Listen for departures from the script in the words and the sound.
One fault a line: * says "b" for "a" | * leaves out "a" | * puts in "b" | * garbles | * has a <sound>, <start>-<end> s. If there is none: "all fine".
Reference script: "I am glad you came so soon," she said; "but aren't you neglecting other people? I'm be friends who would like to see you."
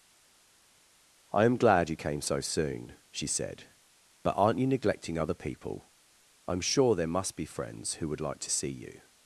* puts in "sure there must"